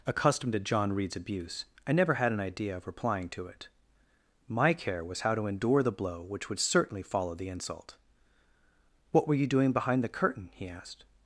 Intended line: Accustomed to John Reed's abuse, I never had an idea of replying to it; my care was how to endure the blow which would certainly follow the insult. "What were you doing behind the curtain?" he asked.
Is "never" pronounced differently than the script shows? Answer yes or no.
no